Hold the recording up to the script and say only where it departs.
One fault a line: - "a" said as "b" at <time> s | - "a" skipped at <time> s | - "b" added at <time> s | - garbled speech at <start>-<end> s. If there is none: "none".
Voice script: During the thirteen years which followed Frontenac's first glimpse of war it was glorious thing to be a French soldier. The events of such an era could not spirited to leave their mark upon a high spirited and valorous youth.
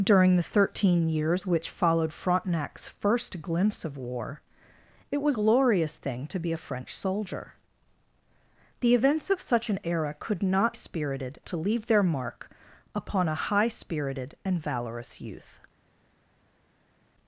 none